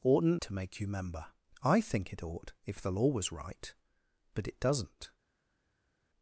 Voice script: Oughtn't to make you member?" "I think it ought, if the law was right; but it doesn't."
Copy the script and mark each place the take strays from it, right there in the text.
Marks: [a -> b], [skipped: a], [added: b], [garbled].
Oughtn't to make you member?" "I think it ought, if the law was right; but it doesn't."